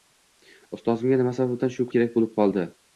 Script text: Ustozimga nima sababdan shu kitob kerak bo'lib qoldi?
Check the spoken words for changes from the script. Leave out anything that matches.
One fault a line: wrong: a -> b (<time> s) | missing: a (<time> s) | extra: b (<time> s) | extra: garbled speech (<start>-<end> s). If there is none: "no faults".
missing: kitob (1.9 s)